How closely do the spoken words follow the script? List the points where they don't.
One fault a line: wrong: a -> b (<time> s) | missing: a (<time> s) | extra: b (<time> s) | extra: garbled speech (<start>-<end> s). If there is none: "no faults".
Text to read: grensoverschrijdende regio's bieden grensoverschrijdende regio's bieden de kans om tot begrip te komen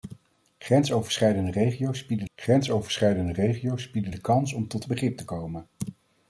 no faults